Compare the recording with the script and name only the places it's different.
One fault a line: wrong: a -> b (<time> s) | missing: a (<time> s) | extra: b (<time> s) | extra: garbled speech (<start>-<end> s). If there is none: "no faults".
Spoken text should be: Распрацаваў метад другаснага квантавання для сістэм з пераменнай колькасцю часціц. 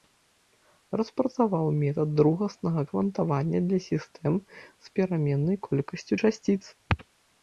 no faults